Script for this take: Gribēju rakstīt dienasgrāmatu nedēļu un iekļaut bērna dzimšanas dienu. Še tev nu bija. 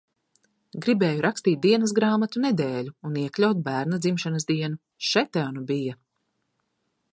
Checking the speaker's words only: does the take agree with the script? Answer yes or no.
yes